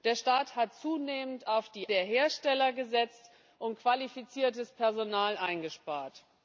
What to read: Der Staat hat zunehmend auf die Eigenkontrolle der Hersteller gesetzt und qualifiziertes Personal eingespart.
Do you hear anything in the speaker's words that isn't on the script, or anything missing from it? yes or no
yes